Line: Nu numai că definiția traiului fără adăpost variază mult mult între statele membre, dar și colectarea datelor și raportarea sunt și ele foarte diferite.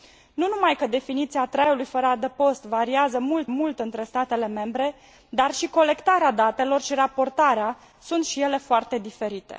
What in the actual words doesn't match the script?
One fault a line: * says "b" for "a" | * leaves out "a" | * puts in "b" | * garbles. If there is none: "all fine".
all fine